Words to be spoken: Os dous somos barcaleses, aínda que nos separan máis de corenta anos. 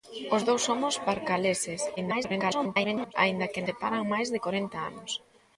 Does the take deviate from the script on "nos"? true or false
true